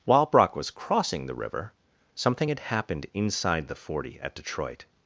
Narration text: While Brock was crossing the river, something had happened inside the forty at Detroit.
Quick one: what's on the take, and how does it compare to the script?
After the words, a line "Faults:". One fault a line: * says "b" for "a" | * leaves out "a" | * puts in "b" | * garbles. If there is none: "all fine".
While Brock was crossing the river, something had happened inside the forty at Detroit.
Faults:
all fine